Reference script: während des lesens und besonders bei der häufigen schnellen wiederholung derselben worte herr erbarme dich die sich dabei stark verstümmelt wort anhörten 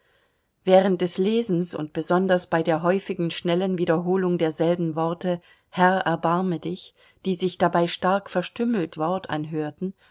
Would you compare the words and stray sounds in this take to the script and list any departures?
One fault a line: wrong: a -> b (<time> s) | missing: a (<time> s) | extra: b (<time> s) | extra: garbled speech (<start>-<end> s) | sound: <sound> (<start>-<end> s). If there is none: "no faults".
no faults